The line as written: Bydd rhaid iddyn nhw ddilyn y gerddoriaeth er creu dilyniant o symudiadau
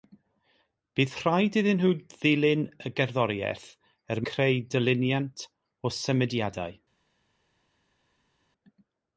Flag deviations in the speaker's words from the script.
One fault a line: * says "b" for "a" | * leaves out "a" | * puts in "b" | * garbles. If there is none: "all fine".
all fine